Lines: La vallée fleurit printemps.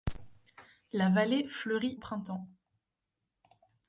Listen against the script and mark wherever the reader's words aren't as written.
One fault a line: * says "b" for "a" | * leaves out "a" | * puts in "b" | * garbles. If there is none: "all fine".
all fine